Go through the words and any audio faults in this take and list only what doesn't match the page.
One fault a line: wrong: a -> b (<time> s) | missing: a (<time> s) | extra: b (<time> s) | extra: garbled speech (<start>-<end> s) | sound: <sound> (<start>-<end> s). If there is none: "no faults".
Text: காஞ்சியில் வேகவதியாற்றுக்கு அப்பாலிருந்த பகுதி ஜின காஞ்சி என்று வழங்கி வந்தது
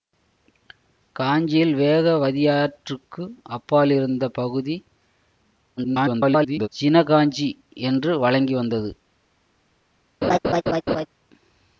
extra: garbled speech (5.8-6.7 s)
sound: laugh (10.2-11.1 s)